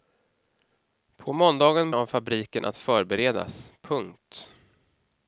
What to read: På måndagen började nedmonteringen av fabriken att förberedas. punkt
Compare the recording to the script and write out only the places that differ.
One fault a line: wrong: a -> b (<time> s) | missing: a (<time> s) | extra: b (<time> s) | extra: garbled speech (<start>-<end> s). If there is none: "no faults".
missing: började nedmonteringen (1.9 s)